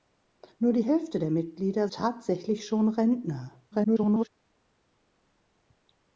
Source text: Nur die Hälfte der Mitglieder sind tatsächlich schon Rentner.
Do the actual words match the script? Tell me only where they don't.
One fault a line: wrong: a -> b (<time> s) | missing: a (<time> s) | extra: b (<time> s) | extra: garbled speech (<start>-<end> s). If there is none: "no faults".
missing: sind (1.9 s)
extra: garbled speech (3.7-4.3 s)